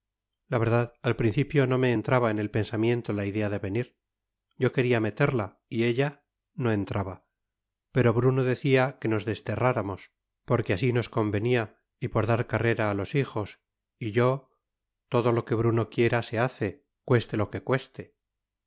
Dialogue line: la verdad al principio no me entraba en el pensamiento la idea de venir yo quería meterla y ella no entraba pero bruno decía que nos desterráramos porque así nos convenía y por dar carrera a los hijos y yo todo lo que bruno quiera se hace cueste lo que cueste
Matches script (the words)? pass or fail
pass